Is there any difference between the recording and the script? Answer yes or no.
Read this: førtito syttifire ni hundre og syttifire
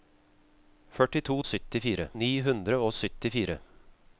no